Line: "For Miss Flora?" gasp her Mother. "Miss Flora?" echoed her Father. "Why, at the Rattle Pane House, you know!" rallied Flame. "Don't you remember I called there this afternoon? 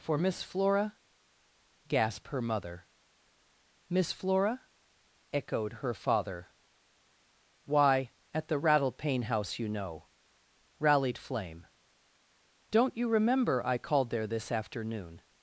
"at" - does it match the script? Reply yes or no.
yes